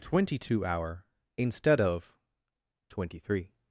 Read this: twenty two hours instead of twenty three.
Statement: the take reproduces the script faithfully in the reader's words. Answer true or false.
false